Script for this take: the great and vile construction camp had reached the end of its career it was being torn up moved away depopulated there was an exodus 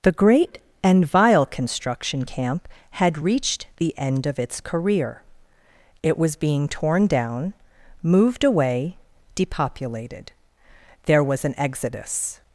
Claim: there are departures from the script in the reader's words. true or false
true